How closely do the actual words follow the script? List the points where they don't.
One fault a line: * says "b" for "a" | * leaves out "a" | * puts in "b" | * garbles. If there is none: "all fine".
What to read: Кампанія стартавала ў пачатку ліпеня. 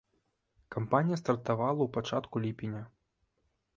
all fine